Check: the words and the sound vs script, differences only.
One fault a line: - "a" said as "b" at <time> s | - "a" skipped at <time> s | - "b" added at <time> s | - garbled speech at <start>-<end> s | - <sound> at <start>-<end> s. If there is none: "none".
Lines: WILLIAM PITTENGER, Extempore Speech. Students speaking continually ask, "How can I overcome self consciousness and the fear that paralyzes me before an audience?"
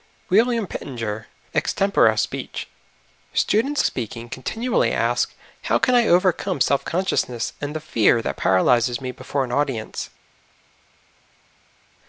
none